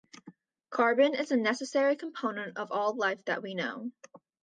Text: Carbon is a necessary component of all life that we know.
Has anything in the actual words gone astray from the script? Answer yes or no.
no